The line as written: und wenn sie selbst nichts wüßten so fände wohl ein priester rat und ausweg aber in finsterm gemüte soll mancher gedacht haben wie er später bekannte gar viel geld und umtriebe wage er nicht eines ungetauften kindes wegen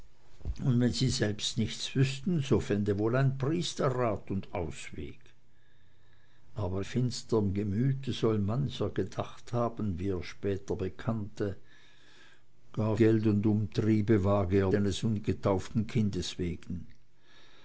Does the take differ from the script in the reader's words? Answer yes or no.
yes